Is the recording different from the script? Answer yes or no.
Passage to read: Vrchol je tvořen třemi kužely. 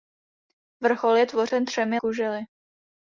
no